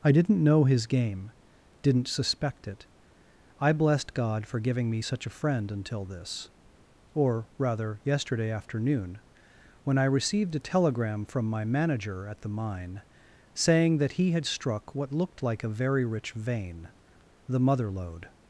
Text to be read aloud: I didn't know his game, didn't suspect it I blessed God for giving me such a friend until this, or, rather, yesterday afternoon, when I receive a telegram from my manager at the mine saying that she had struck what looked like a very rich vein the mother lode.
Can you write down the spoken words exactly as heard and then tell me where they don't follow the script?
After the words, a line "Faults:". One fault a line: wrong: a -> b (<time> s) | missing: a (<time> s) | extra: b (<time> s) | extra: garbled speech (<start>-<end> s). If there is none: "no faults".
I didn't know his game, didn't suspect it I blessed God for giving me such a friend until this, or, rather, yesterday afternoon, when I received a telegram from my manager at the mine saying that he had struck what looked like a very rich vein the mother lode.
Faults:
wrong: receive -> received (10.0 s)
wrong: she -> he (14.1 s)